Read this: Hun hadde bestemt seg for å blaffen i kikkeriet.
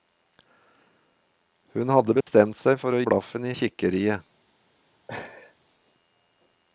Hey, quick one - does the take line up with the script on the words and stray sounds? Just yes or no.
no